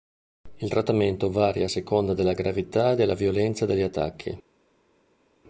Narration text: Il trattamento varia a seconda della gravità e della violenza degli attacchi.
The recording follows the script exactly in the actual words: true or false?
true